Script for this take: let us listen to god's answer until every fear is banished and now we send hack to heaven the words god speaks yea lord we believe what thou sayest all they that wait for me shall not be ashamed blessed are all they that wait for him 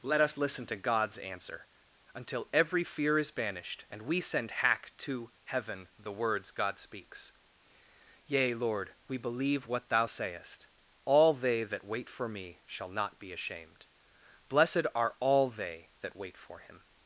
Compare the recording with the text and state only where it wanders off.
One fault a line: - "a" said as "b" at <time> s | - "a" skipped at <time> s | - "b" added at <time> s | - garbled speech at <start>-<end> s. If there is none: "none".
- "now" skipped at 4.0 s